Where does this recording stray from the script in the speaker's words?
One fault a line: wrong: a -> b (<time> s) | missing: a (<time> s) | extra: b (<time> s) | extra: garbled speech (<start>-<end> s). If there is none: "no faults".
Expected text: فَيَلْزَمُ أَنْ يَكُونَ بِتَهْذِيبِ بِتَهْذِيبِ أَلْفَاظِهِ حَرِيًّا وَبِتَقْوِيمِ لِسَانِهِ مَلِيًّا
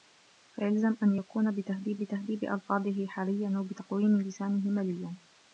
no faults